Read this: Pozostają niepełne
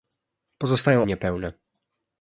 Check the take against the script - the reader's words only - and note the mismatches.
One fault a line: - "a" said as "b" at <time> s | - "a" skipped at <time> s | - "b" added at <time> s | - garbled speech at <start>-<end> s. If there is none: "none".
none